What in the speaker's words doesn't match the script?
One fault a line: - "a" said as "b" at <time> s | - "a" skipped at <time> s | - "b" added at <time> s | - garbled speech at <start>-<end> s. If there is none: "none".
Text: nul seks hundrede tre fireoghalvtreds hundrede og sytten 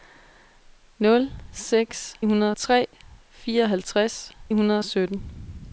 none